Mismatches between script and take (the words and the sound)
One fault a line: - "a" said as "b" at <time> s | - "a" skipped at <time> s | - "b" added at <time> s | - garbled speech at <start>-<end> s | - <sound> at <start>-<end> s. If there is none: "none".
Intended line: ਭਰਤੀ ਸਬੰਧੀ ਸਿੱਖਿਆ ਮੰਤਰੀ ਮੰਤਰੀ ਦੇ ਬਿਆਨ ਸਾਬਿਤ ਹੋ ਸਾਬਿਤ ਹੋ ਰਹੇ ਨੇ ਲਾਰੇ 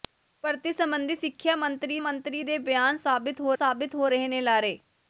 none